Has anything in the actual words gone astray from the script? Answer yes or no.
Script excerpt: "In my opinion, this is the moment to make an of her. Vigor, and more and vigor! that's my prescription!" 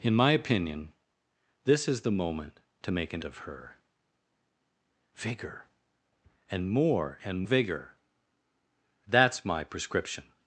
no